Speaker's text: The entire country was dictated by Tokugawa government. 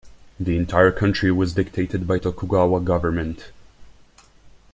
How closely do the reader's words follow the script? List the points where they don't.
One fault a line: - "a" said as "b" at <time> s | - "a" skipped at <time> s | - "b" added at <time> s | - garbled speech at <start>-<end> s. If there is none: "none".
none